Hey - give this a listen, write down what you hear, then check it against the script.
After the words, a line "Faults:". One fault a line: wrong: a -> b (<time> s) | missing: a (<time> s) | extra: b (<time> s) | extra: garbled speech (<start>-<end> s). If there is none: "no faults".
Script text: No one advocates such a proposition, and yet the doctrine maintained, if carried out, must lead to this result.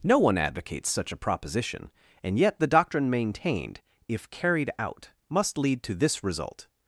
No one advocates such a proposition, and yet the doctrine maintained, if carried out, must lead to this result.
Faults:
no faults